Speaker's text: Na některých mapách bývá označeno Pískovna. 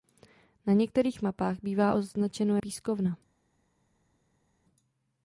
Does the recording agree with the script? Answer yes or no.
yes